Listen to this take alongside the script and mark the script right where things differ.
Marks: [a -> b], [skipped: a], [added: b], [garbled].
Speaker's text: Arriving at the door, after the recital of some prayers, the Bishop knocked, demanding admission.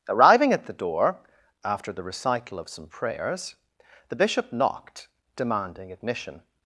Arriving at the door, after the recital of some prayers, the Bishop knocked, demanding admission.